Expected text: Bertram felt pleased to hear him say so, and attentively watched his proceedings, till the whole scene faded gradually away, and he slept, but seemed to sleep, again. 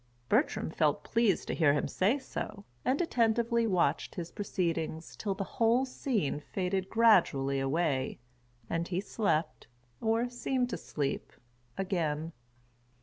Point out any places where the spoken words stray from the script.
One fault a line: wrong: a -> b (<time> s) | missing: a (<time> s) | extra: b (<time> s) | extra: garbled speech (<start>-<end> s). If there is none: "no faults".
wrong: but -> or (10.0 s)